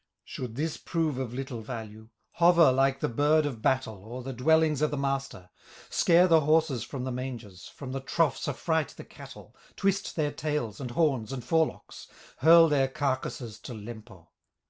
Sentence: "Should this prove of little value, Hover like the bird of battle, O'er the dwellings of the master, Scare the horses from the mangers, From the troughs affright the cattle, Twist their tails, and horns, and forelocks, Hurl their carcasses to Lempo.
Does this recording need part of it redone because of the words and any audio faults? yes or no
no